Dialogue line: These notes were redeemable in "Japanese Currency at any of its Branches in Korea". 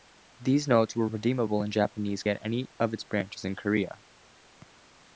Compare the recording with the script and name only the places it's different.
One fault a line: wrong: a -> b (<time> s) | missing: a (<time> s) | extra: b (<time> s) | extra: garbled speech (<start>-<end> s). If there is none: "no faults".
missing: Currency (2.2 s)